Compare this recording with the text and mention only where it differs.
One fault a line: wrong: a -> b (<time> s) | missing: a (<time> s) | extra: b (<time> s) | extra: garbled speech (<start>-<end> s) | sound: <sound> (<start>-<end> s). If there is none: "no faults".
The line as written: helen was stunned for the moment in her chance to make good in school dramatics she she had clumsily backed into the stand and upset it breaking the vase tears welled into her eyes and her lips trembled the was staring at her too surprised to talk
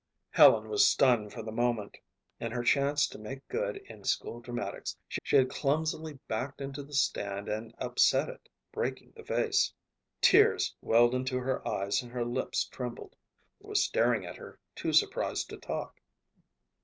no faults